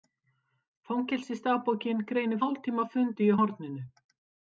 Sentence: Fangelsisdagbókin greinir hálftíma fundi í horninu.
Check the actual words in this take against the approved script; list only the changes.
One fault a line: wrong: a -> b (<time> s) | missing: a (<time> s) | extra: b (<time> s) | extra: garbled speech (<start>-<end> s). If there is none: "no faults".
no faults